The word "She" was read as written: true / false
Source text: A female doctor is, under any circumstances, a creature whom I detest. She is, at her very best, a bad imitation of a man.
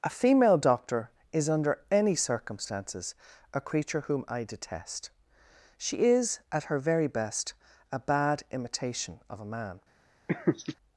true